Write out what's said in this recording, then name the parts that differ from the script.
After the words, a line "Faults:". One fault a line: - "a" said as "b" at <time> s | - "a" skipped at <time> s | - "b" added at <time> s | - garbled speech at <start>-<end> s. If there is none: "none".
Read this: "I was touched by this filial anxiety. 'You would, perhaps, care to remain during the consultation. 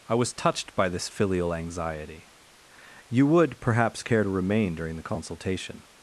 "I was touched by this filial anxiety. 'You would, perhaps, care to remain during the consultation.
Faults:
none